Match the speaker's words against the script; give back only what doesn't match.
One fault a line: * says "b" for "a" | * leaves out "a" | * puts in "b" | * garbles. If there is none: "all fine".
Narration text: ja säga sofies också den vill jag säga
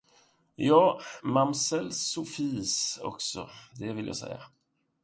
* says "mamsell" for "säga"
* says "det" for "den"